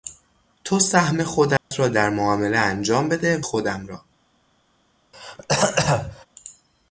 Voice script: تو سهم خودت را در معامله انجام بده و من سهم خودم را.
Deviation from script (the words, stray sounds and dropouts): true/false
true